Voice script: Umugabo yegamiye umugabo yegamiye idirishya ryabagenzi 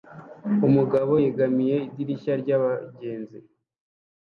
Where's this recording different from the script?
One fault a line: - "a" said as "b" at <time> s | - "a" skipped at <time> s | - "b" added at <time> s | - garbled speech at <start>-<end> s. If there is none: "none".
- "umugabo yegamiye" skipped at 1.8 s